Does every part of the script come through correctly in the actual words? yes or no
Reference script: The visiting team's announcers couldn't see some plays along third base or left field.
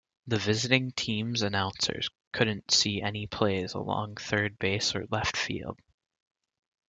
no